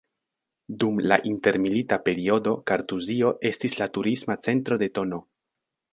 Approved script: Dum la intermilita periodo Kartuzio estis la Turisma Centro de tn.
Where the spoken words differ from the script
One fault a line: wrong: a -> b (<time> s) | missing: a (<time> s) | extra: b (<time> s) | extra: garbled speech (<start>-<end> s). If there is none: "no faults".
no faults